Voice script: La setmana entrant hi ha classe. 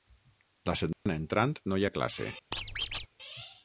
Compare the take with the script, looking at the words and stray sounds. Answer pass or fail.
fail